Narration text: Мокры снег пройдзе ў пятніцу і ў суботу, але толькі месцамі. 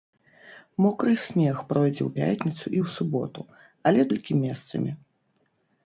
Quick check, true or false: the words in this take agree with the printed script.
true